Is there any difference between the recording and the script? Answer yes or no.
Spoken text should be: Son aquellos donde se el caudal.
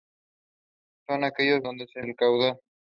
no